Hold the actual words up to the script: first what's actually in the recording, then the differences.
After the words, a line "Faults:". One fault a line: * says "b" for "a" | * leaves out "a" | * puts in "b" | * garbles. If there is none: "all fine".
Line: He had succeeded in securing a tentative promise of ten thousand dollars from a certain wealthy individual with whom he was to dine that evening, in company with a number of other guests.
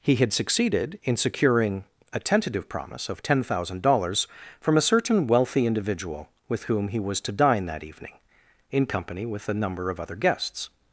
He had succeeded in securing a tentative promise of ten thousand dollars from a certain wealthy individual with whom he was to dine that evening, in company with a number of other guests.
Faults:
all fine